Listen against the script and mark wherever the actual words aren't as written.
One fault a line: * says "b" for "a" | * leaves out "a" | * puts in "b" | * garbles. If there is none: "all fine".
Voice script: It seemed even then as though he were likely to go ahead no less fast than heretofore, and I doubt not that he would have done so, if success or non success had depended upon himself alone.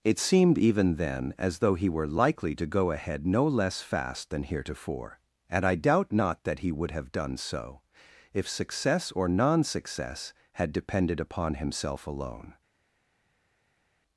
all fine